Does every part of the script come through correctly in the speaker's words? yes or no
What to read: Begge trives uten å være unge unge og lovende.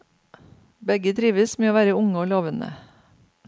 no